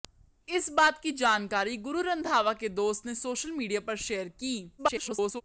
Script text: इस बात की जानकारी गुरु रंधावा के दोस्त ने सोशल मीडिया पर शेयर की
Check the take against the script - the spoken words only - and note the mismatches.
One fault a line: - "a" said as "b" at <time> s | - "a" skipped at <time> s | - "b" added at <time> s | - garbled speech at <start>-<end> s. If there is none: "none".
- garbled speech at 4.8-5.4 s